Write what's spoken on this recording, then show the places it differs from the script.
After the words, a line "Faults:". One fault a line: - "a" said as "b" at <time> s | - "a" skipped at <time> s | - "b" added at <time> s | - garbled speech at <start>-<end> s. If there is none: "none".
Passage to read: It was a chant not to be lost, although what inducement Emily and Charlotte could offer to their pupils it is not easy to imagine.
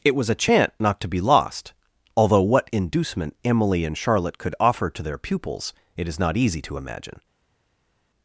It was a chant not to be lost, although what inducement Emily and Charlotte could offer to their pupils it is not easy to imagine.
Faults:
none